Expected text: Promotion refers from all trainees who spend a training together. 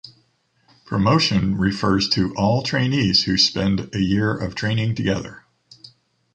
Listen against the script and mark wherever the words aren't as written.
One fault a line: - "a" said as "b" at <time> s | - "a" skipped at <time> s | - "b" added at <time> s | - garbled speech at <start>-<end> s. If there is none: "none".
- "from" said as "to" at 2.1 s
- "year of" added at 4.0 s